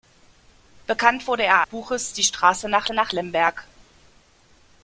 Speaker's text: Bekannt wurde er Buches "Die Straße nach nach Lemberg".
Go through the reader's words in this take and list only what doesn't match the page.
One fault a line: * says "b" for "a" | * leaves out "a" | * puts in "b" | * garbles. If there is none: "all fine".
all fine